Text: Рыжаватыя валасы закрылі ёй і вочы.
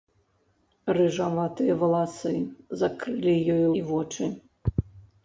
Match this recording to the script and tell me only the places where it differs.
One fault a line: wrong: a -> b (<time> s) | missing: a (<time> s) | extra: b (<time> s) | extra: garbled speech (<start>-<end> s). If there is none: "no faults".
no faults